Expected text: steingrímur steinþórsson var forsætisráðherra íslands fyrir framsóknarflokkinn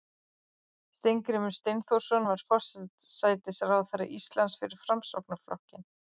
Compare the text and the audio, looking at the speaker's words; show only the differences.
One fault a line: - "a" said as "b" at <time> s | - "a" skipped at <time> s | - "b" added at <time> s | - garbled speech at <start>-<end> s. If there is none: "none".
none